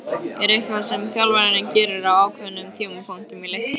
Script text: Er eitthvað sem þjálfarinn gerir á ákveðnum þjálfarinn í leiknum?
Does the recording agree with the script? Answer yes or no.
no